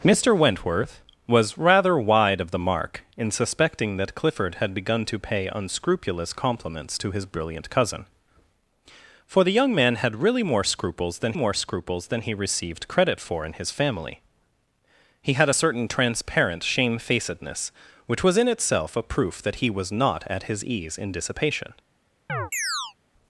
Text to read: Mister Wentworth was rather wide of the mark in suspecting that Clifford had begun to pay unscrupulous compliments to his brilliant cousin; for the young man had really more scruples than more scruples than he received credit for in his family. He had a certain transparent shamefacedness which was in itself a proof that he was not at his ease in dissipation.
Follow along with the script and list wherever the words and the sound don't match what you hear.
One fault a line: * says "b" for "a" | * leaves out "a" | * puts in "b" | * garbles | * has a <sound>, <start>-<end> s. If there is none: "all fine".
* has a chirp, 22.3-22.9 s